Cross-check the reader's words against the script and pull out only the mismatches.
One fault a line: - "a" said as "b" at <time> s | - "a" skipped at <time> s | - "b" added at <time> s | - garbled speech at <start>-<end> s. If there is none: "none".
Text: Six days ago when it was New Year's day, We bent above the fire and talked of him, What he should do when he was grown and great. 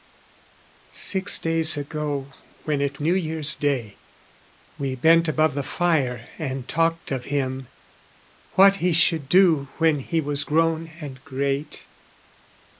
- "was" skipped at 3.0 s